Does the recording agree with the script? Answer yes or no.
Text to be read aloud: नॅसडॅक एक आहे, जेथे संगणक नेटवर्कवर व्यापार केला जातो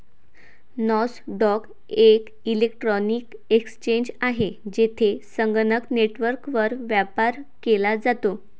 no